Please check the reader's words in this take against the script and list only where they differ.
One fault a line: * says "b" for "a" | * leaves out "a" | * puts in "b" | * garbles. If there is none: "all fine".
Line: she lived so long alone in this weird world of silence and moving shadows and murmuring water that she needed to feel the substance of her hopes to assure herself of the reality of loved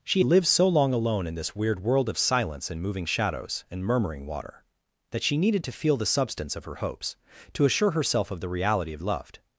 all fine